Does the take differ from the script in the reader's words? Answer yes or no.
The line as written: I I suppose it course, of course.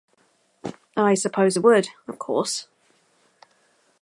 yes